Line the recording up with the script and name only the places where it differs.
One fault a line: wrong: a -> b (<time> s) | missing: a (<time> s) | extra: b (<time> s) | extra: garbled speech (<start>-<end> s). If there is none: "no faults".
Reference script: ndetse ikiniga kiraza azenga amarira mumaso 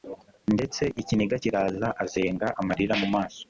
no faults